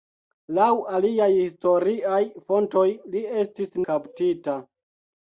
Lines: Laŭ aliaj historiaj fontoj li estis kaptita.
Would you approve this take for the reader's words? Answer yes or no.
yes